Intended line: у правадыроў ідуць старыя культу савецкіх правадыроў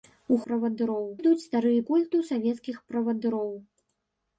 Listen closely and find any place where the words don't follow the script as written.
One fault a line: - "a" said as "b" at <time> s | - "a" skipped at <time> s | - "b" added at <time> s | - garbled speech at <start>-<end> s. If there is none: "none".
none